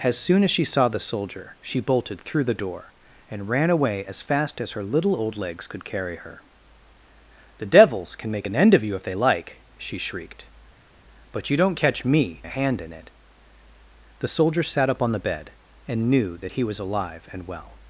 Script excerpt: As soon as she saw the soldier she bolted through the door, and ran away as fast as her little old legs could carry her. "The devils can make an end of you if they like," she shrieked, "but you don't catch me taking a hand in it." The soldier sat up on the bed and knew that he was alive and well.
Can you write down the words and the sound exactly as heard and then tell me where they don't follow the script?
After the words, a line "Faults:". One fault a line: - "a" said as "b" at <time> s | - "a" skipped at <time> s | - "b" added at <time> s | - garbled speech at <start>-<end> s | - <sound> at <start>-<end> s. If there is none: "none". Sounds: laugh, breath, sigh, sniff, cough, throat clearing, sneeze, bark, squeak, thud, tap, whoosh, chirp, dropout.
As soon as she saw the soldier she bolted through the door, and ran away as fast as her little old legs could carry her. "The devils can make an end of you if they like," she shrieked, "but you don't catch me a hand in it." The soldier sat up on the bed and knew that he was alive and well.
Faults:
- "taking" skipped at 12.4 s